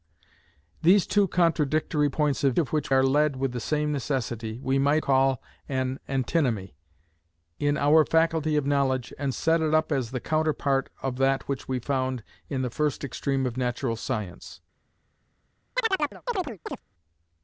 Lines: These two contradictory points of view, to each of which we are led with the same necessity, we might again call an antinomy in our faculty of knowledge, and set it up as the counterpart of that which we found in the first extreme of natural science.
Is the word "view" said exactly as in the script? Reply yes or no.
no